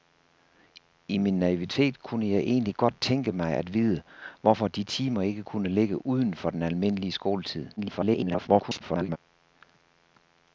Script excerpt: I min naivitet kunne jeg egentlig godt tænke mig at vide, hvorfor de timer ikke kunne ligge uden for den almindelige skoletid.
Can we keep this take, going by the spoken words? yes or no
no